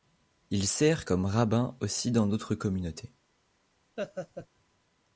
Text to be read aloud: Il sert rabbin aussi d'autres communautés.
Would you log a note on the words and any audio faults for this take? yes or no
yes